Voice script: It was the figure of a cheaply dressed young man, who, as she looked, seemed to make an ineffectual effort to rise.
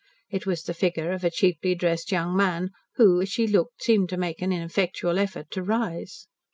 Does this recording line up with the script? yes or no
yes